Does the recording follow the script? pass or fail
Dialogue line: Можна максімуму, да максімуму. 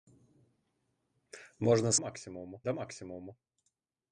pass